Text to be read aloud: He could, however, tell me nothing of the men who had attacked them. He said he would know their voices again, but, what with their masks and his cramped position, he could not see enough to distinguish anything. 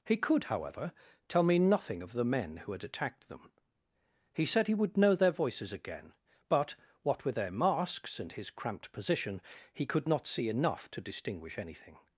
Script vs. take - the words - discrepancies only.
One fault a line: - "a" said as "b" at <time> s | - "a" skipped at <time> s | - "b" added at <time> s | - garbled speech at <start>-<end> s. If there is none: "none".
none